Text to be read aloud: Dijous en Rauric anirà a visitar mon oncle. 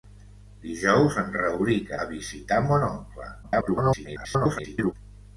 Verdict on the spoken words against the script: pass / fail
fail